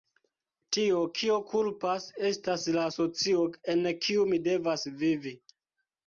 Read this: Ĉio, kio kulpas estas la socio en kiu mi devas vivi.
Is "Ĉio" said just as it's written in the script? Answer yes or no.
no